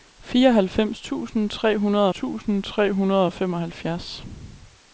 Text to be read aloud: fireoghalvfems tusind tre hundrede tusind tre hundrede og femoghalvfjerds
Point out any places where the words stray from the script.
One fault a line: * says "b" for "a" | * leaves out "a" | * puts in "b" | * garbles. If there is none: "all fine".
all fine